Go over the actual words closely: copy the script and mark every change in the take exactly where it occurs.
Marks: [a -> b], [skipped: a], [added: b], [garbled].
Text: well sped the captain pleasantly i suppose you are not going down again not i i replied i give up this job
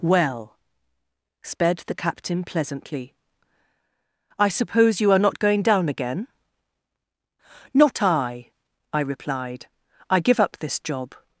well sped the captain pleasantly i suppose you are not going down again not i i replied i give up this job